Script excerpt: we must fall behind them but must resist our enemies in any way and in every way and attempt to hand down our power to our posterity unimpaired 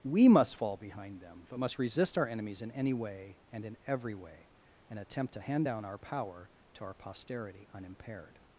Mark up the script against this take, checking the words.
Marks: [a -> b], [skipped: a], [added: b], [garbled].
we must fall behind them but must resist our enemies in any way and in every way and attempt to hand down our power to our posterity unimpaired